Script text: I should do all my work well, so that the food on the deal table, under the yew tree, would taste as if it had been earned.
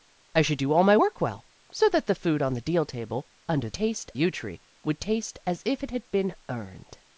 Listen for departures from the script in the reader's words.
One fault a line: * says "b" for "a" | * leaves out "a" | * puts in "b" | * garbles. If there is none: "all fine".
* says "taste" for "the"